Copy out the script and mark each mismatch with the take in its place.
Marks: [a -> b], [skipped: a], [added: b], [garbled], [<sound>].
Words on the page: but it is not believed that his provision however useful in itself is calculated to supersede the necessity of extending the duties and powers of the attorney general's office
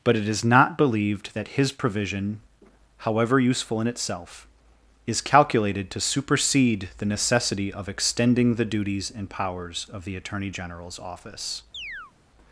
but it is not believed that his provision however useful in itself is calculated to supersede the necessity of extending the duties and powers of the attorney general's office [chirp]